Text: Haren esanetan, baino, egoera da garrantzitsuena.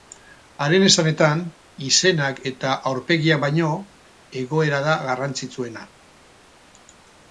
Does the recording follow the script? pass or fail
fail